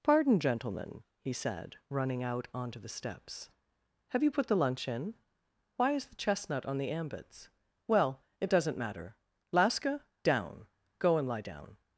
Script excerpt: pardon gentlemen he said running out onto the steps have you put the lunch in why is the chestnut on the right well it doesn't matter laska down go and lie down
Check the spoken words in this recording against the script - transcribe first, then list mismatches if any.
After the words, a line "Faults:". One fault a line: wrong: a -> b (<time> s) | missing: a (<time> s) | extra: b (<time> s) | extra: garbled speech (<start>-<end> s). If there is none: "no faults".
pardon gentlemen he said running out onto the steps have you put the lunch in why is the chestnut on the ambits well it doesn't matter laska down go and lie down
Faults:
wrong: right -> ambits (6.9 s)